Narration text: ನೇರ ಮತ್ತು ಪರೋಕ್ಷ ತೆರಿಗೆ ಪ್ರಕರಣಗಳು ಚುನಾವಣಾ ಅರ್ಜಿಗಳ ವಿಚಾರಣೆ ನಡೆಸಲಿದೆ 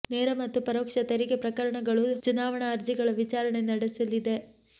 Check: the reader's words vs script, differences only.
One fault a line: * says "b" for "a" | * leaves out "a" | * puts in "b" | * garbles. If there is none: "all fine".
all fine